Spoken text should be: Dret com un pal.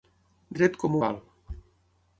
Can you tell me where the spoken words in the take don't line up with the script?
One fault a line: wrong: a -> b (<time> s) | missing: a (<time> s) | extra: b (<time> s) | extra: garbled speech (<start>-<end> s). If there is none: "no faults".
missing: un (1.0 s)